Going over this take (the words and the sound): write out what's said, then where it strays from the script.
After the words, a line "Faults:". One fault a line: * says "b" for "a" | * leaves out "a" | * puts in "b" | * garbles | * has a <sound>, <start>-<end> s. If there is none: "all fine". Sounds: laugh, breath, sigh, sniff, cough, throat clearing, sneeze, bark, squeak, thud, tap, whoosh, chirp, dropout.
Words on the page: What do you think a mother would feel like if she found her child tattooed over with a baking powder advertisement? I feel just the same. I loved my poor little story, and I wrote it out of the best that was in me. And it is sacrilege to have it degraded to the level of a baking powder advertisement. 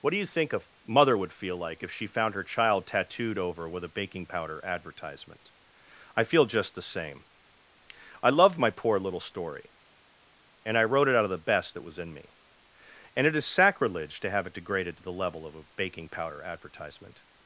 What do you think a mother would feel like if she found her child tattooed over with a baking powder advertisement? I feel just the same. I loved my poor little story, and I wrote it out of the best that was in me. And it is sacrilege to have it degraded to the level of a baking powder advertisement.
Faults:
all fine